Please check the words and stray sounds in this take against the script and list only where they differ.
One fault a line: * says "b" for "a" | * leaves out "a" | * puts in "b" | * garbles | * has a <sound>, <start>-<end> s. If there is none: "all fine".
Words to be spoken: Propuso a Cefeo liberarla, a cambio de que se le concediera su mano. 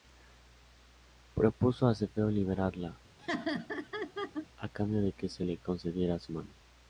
* has a laugh, 3.2-4.5 s